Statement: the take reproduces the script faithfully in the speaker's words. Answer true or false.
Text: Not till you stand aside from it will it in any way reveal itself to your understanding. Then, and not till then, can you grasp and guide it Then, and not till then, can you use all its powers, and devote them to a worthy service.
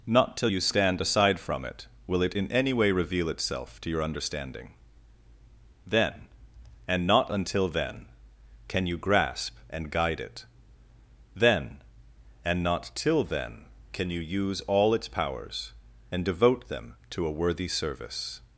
false